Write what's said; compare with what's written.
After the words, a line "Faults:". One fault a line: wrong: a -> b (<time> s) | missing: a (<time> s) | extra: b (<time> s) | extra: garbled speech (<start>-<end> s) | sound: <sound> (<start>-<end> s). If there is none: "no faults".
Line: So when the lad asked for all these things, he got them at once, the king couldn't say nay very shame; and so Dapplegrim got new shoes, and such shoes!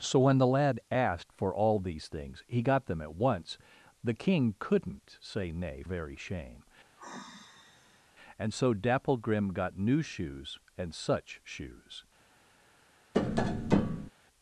So when the lad asked for all these things, he got them at once, the king couldn't say nay very shame; and so Dapplegrim got new shoes, and such shoes!
Faults:
sound: sigh (7.0-8.1 s)
sound: tap (13.1-14.1 s)